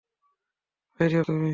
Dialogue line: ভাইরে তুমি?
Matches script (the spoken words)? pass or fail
pass